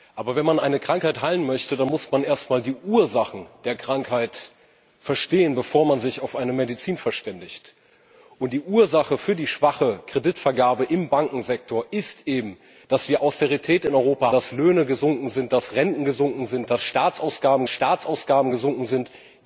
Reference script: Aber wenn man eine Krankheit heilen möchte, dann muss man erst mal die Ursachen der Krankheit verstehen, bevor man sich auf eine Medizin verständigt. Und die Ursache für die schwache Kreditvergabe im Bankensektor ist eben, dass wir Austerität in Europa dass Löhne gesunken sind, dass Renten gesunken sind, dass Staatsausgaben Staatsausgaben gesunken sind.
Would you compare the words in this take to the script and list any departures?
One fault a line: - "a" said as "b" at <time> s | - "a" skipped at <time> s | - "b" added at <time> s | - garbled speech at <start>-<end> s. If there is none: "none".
none